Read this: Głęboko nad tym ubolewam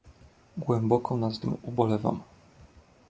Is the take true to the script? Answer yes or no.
yes